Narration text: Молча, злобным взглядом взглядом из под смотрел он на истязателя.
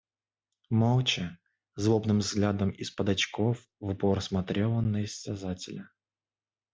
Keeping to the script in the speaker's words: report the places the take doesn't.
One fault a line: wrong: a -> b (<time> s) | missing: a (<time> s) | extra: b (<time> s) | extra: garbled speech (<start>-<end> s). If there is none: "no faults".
missing: взглядом (2.7 s)
extra: очков в упор (3.1 s)